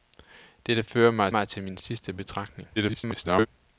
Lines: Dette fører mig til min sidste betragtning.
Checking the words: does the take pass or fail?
fail